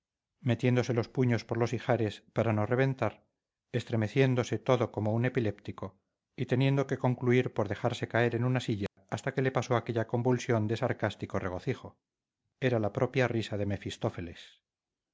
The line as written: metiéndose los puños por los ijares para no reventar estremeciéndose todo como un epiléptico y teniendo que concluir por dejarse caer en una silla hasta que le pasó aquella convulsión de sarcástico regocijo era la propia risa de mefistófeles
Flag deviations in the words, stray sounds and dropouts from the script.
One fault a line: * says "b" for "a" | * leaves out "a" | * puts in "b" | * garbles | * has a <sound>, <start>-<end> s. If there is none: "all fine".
* has a dropout, 8.9-9.0 s